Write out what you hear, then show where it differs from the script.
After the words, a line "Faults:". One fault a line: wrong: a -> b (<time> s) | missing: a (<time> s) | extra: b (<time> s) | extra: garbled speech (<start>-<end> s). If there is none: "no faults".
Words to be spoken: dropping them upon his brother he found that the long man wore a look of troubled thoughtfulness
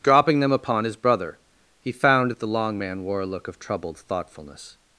dropping them upon his brother he found that the long man wore a look of troubled thoughtfulness
Faults:
no faults